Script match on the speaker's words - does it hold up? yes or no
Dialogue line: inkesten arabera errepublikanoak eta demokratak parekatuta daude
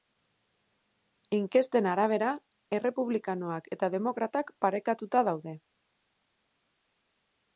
yes